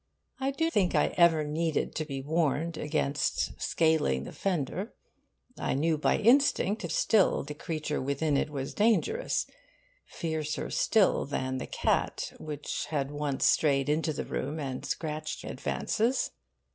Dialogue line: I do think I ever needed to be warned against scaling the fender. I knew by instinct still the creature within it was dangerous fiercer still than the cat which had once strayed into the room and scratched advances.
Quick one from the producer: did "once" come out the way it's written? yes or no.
yes